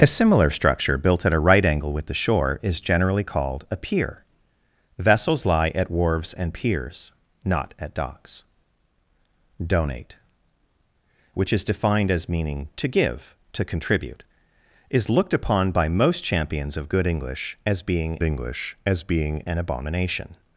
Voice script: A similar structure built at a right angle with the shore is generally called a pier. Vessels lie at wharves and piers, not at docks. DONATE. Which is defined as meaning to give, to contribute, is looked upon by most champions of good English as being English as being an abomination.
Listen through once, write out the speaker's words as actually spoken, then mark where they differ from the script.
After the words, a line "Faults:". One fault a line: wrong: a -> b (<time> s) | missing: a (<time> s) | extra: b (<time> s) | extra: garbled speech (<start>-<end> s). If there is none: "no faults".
A similar structure built at a right angle with the shore is generally called a pier. Vessels lie at wharves and piers, not at docks. DONATE. Which is defined as meaning to give, to contribute, is looked upon by most champions of good English as being English as being an abomination.
Faults:
no faults